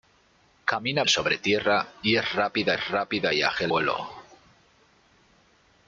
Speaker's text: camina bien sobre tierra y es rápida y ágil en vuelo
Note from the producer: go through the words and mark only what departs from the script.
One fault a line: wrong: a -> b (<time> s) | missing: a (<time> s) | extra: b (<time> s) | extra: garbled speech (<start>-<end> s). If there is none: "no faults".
missing: bien (1.0 s)
extra: es rápida (2.7 s)
missing: en (3.7 s)